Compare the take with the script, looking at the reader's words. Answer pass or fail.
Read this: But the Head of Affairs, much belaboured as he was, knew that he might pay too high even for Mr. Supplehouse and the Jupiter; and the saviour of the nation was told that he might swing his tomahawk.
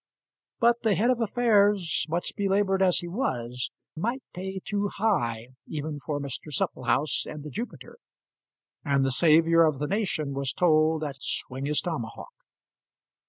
fail